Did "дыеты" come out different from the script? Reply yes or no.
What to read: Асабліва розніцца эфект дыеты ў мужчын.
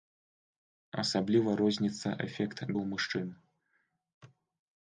yes